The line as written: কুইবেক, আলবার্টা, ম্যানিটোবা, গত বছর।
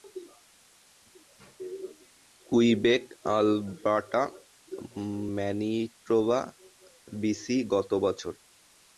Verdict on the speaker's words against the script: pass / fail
fail